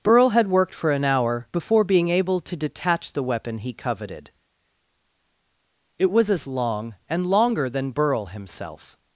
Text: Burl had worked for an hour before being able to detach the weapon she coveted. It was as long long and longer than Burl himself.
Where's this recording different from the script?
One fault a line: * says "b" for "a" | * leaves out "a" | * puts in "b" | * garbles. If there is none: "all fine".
* says "he" for "she"
* leaves out "long"